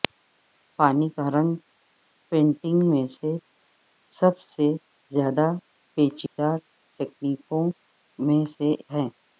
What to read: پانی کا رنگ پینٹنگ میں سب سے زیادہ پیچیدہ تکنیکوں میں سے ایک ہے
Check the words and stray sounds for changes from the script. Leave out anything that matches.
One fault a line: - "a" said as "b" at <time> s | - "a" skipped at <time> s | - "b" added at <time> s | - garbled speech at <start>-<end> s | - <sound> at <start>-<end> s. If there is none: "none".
- dropout at 6.3-6.4 s
- "ایک" skipped at 8.7 s